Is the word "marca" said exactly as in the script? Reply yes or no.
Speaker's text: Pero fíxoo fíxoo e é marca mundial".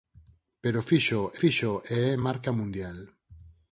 yes